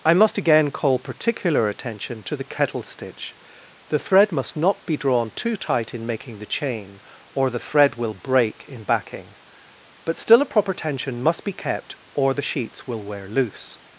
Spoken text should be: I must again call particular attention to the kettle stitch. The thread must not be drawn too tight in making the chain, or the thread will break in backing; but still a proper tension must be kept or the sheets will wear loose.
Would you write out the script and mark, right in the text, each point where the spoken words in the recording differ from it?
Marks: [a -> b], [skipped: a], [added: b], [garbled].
I must again call particular attention to the kettle stitch. The thread must not be drawn too tight in making the chain, or the thread will break in backing; but still a proper tension must be kept or the sheets will wear loose.